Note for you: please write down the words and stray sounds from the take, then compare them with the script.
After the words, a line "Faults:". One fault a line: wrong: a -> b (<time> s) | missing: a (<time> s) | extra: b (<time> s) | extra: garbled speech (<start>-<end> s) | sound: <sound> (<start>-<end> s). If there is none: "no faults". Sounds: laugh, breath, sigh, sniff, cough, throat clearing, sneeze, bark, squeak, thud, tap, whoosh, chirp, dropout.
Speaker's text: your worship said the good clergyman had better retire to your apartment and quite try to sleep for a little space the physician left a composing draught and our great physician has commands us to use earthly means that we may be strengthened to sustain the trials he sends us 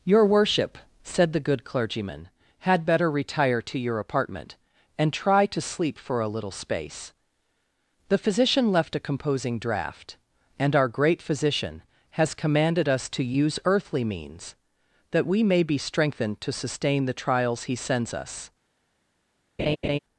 your worship said the good clergyman had better retire to your apartment and try to sleep for a little space the physician left a composing draught and our great physician has commanded us to use earthly means that we may be strengthened to sustain the trials he sends us
Faults:
missing: quite (5.1 s)
wrong: commands -> commanded (12.3 s)
sound: laugh (19.6-20.0 s)